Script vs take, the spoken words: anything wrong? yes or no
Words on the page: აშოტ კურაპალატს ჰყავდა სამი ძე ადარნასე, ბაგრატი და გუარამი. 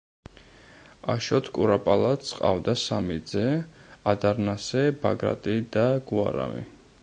no